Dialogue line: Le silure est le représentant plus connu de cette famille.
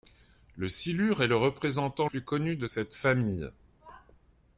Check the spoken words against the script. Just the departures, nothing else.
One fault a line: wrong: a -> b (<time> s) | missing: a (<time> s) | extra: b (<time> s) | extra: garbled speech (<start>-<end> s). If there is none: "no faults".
no faults